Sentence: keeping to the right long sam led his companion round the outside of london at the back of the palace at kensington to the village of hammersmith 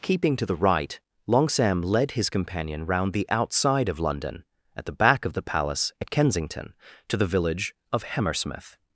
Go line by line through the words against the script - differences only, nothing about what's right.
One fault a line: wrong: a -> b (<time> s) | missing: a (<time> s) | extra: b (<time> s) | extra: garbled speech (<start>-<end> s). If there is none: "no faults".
no faults